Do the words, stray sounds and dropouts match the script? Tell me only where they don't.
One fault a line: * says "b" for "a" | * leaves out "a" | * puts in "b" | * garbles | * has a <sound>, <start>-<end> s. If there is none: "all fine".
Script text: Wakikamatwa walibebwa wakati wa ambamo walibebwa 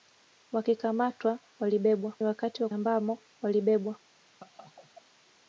* has a laugh, 4.4-5.1 s